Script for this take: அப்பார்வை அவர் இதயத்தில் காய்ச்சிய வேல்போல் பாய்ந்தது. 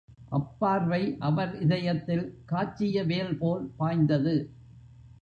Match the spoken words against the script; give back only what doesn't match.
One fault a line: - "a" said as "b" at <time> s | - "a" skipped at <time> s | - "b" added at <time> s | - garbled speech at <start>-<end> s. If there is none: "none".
none